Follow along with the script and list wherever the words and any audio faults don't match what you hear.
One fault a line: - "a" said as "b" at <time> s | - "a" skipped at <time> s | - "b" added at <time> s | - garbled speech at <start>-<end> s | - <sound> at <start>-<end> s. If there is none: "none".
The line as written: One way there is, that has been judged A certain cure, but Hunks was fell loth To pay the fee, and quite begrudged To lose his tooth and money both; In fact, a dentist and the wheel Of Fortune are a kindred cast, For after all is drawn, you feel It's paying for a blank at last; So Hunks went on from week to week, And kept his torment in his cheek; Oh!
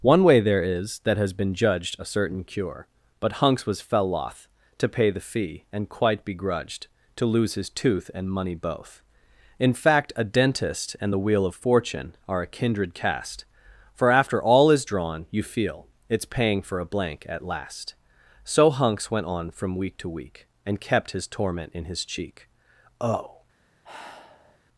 - sigh at 23.8-24.6 s